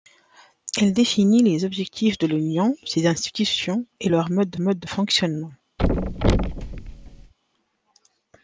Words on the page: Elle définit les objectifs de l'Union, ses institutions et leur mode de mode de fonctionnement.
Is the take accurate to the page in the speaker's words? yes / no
yes